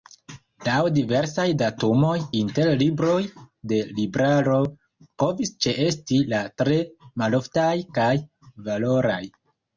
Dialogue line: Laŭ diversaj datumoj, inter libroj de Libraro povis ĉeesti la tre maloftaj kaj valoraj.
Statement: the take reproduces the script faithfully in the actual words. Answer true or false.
true